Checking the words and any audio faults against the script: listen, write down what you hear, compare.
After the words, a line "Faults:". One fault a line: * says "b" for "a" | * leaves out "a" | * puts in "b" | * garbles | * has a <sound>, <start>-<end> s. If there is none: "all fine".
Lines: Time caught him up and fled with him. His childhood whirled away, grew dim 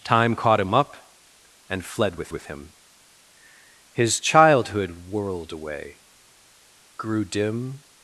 Time caught him up and fled with with him. His childhood whirled away, grew dim
Faults:
* puts in "with"